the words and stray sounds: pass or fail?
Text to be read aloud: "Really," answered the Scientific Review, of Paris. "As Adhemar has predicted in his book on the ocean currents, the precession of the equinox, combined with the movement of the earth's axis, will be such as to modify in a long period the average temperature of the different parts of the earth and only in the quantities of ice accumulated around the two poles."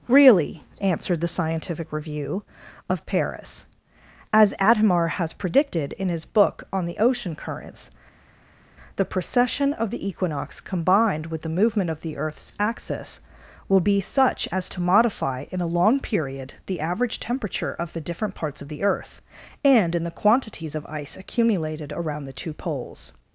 fail